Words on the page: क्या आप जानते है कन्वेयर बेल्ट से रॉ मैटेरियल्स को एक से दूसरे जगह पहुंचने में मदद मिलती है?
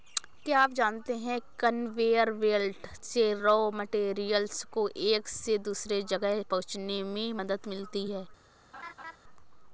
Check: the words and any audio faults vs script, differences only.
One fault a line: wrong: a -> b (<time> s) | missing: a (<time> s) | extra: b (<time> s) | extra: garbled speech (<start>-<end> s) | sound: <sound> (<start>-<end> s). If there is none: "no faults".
sound: laugh (8.7-9.2 s)